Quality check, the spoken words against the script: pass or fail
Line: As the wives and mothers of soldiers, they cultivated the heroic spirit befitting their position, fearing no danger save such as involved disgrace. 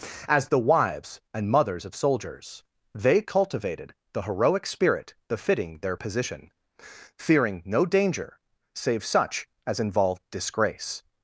pass